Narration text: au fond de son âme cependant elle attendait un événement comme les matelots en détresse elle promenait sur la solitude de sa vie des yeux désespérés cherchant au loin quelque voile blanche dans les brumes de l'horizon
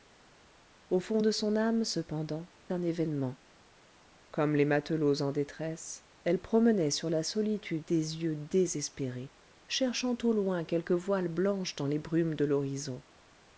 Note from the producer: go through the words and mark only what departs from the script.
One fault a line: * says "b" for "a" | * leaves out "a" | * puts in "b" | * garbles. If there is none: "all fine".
* leaves out "elle attendait"
* leaves out "de sa vie"